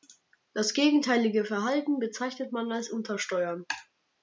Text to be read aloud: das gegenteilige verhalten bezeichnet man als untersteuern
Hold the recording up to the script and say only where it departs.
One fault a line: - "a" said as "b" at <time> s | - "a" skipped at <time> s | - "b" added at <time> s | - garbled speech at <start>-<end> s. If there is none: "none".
none